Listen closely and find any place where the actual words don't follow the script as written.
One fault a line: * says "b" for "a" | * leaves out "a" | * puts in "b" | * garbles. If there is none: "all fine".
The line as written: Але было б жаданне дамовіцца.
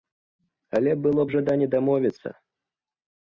all fine